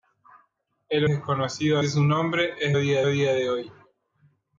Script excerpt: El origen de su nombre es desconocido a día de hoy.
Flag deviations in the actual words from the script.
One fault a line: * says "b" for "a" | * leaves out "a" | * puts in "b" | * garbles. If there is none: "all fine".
* says "desconocido" for "origen"
* says "día" for "desconocido"